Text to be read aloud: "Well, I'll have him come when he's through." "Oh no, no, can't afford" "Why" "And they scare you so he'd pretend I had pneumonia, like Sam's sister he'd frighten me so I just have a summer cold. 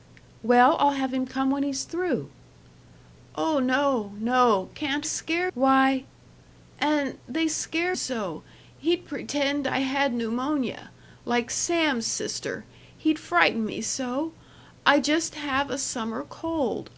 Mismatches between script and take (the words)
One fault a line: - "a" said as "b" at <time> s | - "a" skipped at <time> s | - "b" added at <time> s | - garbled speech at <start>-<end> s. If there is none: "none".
- "afford" said as "scare" at 5.0 s
- "you" skipped at 8.0 s